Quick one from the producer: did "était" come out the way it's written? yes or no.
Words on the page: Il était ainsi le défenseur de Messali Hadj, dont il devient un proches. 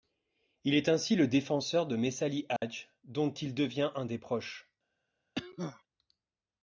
no